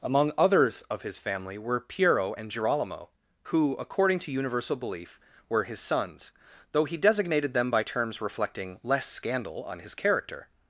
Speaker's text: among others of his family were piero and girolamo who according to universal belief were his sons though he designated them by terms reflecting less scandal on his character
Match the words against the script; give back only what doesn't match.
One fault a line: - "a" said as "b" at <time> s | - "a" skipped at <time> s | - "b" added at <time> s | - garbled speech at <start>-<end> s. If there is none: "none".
none